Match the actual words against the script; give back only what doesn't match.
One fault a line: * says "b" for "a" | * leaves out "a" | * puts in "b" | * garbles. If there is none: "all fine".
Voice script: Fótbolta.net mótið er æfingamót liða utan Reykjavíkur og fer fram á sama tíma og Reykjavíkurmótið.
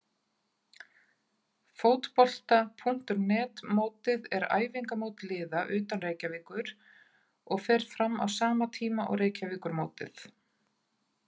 all fine